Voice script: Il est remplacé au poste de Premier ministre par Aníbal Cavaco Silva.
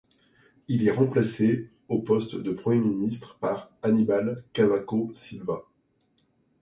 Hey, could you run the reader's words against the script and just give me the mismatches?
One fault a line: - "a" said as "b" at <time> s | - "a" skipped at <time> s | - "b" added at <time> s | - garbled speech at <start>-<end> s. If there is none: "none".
none